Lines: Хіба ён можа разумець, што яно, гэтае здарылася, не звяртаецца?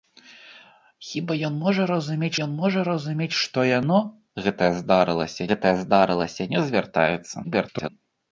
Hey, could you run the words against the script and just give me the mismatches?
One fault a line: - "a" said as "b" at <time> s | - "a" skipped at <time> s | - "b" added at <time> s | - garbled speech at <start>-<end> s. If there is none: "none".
- "ён можа разумець" added at 2.5 s
- "гэтае здарылася" added at 5.5 s
- garbled speech at 7.4-7.9 s